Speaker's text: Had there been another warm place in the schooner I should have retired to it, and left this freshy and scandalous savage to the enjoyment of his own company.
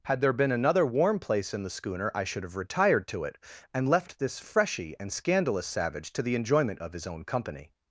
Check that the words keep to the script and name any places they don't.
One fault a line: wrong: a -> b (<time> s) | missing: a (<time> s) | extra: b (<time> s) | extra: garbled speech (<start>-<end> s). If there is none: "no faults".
no faults